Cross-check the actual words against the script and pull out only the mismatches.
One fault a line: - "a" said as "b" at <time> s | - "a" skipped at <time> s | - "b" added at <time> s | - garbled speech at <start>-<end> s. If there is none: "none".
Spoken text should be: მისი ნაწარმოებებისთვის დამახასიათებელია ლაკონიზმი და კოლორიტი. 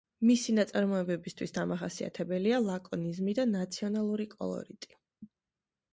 - "ნაციონალური" added at 3.5 s